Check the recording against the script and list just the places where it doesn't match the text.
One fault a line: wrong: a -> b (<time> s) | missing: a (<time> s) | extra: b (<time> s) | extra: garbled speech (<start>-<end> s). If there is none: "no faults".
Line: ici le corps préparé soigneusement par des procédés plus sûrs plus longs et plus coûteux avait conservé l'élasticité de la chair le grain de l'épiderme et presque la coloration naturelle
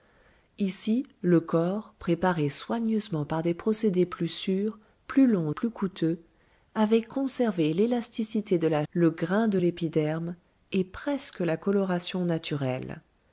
missing: et (5.5 s)
missing: chair (8.8 s)